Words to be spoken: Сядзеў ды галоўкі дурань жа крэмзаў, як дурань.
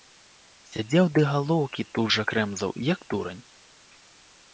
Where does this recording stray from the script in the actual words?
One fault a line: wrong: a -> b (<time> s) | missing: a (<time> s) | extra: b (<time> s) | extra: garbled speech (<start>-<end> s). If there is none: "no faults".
wrong: дурань -> тут (2.0 s)